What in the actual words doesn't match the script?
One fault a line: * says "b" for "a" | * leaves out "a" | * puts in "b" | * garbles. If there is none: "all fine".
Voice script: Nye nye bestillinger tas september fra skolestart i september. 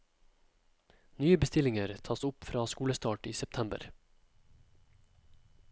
* leaves out "nye"
* says "opp" for "september"